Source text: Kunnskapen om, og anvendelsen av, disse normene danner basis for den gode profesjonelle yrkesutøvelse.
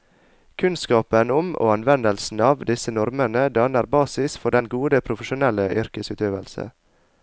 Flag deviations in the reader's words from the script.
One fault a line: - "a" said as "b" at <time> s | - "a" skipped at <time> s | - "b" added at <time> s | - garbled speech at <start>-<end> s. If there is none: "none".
none